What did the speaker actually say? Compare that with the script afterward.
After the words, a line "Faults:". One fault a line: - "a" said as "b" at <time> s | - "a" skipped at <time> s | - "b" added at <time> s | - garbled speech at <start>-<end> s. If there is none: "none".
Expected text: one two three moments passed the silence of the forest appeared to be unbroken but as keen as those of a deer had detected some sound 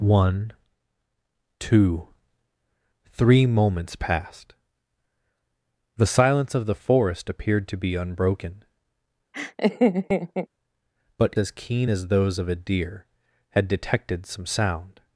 one two three moments passed the silence of the forest appeared to be unbroken but as keen as those of a deer had detected some sound
Faults:
none